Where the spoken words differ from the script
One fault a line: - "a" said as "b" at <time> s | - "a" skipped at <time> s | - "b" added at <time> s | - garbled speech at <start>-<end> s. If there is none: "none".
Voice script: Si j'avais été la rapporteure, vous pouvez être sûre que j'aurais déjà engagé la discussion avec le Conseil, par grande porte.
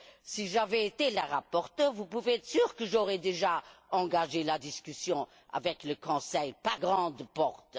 none